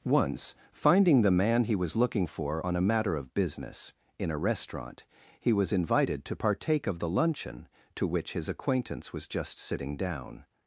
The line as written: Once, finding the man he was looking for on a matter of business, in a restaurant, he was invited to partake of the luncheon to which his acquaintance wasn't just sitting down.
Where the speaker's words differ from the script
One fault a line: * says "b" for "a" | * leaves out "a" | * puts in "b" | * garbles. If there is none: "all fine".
* says "was" for "wasn't"